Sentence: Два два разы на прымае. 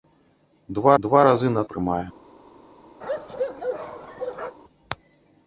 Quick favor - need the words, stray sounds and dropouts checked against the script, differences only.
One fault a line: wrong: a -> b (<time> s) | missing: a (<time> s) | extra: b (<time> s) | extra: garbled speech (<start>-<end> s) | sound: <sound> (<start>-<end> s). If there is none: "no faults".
sound: bark (3.0-4.6 s)